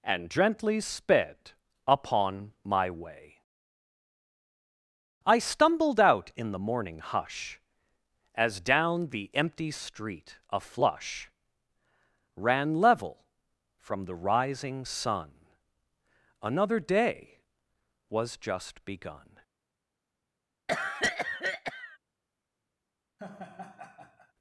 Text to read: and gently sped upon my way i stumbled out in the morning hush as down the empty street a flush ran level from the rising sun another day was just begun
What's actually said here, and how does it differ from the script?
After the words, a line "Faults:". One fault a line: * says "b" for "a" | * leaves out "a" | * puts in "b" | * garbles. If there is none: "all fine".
and gently sped upon my way i stumbled out in the morning hush as down the empty street a flush ran level from the rising sun another day was just begun
Faults:
all fine